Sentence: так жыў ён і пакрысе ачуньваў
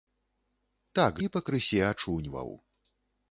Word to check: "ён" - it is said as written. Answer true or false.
false